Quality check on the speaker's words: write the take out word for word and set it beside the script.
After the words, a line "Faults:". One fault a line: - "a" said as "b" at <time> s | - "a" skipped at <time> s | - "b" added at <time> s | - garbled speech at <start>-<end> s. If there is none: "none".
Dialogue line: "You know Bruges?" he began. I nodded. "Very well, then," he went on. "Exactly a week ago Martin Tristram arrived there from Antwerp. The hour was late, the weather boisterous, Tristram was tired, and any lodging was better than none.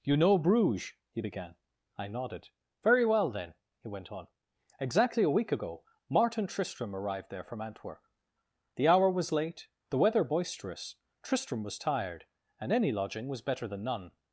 "You know Bruges?" he began. I nodded. "Very well, then," he went on. "Exactly a week ago Martin Tristram arrived there from Antwerp. The hour was late, the weather boisterous, Tristram was tired, and any lodging was better than none.
Faults:
none